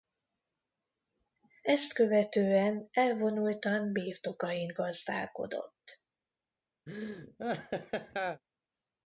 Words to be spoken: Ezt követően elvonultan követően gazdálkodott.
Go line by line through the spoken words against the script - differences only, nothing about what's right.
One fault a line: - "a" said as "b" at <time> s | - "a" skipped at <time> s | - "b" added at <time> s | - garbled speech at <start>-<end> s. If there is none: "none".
- "követően" said as "birtokain" at 3.9 s